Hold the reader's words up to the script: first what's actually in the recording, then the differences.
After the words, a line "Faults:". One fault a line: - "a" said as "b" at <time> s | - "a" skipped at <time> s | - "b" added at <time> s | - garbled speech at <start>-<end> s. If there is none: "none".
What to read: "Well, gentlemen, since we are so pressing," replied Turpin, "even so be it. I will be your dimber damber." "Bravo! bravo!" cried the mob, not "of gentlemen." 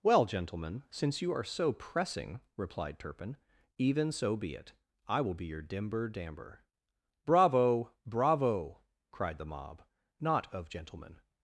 "Well, gentlemen, since you are so pressing," replied Turpin, "even so be it. I will be your dimber damber." "Bravo! bravo!" cried the mob, not "of gentlemen."
Faults:
- "we" said as "you" at 1.2 s